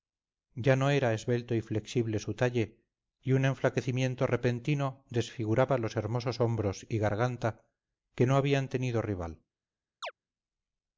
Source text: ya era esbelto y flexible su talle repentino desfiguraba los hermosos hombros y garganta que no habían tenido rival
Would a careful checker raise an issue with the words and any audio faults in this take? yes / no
yes